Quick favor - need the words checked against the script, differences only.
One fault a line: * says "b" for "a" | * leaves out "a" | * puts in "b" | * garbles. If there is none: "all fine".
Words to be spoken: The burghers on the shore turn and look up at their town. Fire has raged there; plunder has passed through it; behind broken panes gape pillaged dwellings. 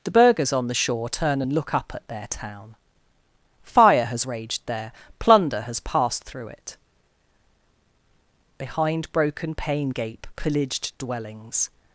* says "pane" for "panes"